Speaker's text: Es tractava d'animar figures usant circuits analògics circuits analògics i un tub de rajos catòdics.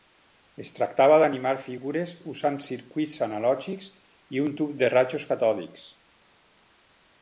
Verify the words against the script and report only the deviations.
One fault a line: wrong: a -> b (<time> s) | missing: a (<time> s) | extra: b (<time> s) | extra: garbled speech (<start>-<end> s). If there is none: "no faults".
missing: circuits analògics (3.9 s)